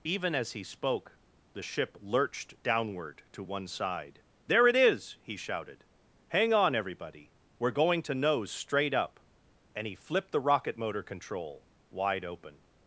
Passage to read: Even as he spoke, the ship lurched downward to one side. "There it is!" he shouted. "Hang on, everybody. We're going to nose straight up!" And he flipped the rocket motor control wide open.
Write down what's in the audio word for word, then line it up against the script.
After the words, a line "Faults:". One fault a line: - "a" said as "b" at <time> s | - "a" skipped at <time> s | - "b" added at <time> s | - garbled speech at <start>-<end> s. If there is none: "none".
Even as he spoke, the ship lurched downward to one side. "There it is!" he shouted. "Hang on, everybody. We're going to nose straight up!" And he flipped the rocket motor control wide open.
Faults:
none